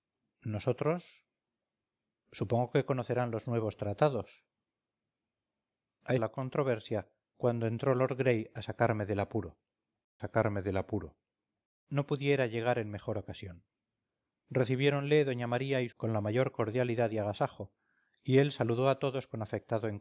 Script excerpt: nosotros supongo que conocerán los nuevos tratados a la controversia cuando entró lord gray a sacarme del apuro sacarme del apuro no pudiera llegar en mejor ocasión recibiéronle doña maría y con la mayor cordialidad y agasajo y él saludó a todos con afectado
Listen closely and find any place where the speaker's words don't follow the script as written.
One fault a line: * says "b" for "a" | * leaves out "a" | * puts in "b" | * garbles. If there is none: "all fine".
all fine